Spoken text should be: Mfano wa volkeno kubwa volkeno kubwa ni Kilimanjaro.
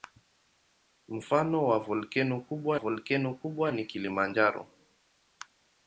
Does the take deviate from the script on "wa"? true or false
false